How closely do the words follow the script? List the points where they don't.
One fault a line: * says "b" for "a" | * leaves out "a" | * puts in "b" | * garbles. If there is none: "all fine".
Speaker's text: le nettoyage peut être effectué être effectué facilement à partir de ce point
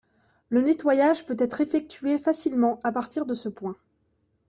* leaves out "être effectué"